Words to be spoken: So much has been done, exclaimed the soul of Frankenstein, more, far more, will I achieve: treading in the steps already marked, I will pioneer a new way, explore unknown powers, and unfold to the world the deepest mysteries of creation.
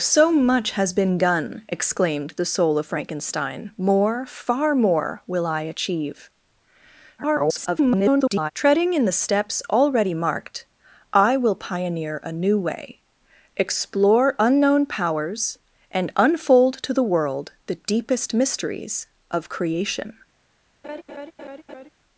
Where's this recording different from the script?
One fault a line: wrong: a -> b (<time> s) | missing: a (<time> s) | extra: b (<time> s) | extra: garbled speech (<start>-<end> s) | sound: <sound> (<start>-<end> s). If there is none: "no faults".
extra: garbled speech (7.2-8.5 s)
sound: laugh (20.8-21.9 s)